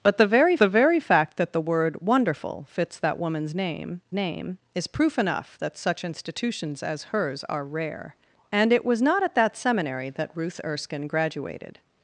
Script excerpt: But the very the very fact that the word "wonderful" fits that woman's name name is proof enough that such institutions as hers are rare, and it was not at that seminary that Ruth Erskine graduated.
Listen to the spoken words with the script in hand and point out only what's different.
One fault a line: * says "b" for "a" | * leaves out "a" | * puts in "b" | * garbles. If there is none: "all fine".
all fine